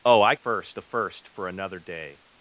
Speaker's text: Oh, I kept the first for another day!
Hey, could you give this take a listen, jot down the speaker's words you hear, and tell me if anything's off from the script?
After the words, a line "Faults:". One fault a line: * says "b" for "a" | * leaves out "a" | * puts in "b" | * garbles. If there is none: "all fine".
Oh, I first the first for another day!
Faults:
* says "first" for "kept"